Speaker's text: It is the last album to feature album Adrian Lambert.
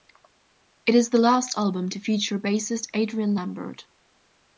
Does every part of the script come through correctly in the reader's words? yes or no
no